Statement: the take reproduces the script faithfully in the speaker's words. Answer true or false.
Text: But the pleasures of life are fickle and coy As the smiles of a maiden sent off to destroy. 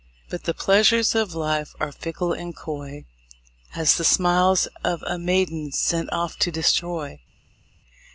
true